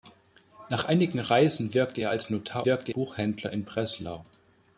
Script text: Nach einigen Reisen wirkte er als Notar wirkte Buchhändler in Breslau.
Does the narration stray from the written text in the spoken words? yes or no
no